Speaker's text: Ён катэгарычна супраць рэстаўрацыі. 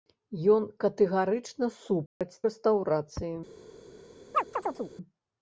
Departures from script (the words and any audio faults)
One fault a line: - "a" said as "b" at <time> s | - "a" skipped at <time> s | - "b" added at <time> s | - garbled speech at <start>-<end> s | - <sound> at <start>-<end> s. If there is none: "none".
- dropout at 2.1-2.2 s
- chirp at 4.3-4.9 s